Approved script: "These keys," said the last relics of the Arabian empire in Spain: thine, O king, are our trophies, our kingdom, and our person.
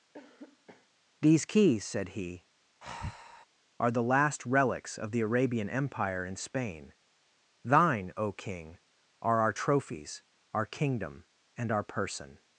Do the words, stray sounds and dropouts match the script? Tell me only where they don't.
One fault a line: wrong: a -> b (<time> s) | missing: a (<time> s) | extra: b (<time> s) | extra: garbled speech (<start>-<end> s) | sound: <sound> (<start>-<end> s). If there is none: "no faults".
sound: cough (0.1-0.9 s)
extra: he are (2.1 s)
sound: breath (2.8-3.5 s)